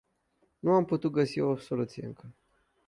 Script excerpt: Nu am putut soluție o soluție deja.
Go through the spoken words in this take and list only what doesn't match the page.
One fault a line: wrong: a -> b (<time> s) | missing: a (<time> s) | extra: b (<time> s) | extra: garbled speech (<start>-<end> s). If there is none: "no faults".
wrong: soluție -> găsi (1.1 s)
wrong: deja -> încă (2.0 s)